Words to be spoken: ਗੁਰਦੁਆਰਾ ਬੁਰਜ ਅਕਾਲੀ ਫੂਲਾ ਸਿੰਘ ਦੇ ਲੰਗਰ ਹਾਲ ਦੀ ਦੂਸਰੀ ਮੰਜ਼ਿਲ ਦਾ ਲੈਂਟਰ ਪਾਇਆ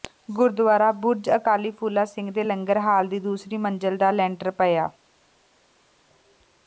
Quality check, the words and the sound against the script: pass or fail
pass